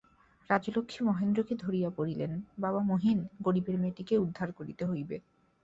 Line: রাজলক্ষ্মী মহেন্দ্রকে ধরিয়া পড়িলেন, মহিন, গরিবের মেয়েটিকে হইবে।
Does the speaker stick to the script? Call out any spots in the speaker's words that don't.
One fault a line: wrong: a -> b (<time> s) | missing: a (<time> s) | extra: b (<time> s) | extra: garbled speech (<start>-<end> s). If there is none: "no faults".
extra: বাবা (2.6 s)
extra: উদ্ধার করিতে (4.2 s)